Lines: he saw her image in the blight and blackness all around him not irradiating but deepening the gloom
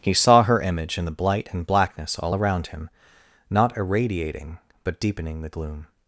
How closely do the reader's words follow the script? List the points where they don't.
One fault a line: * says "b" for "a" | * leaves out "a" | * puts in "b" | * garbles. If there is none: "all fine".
all fine